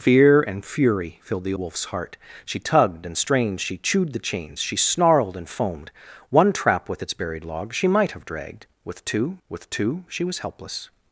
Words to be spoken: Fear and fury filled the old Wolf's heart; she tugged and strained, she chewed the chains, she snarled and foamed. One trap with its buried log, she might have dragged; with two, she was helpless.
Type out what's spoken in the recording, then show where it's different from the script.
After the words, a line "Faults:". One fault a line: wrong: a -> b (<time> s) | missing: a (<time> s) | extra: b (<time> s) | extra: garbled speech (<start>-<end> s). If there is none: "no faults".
Fear and fury filled the Wolf's heart; she tugged and strained, she chewed the chains, she snarled and foamed. One trap with its buried log, she might have dragged; with two with two, she was helpless.
Faults:
missing: old (1.5 s)
extra: with two (9.5 s)